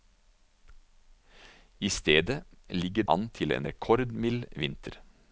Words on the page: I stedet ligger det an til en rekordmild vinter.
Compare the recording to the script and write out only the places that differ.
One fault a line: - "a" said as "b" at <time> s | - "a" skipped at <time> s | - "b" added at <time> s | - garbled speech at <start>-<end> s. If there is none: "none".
- "det" skipped at 3.0 s